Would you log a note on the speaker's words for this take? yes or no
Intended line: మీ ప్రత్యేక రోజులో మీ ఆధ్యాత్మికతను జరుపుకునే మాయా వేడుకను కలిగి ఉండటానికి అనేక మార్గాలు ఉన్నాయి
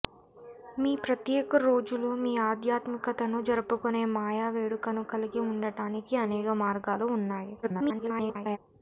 yes